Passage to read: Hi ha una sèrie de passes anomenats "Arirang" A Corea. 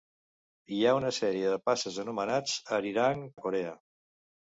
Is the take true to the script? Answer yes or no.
yes